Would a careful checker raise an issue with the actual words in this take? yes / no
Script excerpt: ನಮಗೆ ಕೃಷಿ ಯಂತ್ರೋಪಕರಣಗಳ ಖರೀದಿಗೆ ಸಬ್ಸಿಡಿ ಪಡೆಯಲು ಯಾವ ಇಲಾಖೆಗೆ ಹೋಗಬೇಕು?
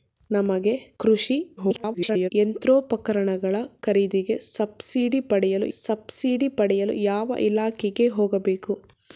yes